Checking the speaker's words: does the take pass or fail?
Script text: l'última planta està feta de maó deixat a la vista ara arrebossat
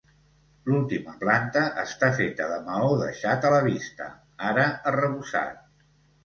pass